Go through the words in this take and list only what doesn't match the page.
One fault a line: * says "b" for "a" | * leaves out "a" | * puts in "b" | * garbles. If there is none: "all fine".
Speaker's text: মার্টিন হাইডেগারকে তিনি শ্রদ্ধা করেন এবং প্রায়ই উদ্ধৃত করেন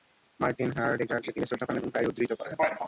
all fine